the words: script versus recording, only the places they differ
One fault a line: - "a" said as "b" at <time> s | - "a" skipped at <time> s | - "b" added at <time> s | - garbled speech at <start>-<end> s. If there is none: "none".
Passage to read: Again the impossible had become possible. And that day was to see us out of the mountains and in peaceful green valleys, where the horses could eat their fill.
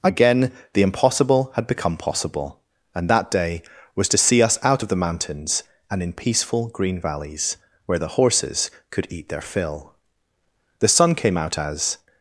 - "The sun came out as" added at 10.8 s